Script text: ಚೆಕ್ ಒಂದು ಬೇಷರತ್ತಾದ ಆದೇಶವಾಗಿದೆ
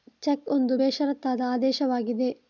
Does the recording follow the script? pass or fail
pass